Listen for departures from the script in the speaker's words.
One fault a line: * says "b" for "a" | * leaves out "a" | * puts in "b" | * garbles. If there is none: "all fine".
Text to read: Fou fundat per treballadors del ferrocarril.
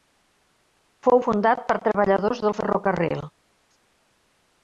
all fine